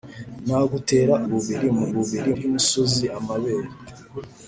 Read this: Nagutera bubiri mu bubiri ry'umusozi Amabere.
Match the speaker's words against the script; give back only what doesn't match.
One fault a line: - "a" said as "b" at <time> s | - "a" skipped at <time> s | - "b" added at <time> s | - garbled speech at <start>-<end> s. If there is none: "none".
none